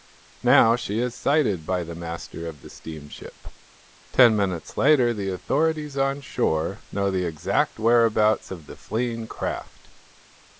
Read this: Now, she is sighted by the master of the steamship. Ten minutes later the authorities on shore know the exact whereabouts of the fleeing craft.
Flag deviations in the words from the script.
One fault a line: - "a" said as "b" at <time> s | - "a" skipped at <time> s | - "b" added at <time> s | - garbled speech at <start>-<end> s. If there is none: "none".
none